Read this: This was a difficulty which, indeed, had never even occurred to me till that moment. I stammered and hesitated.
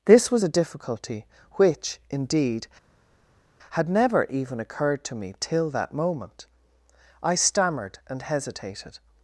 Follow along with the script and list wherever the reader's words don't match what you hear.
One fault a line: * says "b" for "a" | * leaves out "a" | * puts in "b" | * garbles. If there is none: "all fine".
all fine